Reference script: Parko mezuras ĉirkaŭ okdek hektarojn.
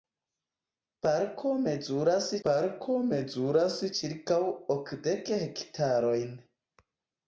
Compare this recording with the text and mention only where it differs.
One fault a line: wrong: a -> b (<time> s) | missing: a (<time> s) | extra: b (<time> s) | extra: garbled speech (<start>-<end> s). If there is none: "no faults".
extra: parko mezuras (2.5 s)